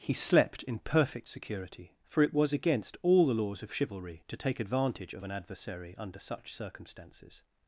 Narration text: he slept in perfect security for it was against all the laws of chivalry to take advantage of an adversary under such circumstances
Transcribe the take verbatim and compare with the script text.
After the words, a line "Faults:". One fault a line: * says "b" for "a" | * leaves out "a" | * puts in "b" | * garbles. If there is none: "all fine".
he slept in perfect security for it was against all the laws of chivalry to take advantage of an adversary under such circumstances
Faults:
all fine